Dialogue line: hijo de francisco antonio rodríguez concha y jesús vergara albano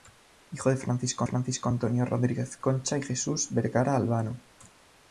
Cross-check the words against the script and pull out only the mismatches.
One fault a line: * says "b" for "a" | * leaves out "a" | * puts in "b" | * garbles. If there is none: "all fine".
* puts in "francisco"